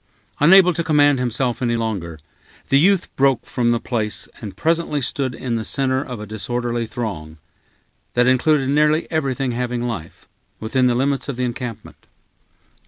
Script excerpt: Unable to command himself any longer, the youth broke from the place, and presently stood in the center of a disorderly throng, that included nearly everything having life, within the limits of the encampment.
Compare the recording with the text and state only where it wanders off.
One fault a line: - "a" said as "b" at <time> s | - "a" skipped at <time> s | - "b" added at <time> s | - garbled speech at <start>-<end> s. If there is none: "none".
none